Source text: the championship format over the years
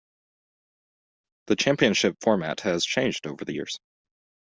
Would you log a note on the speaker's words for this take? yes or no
yes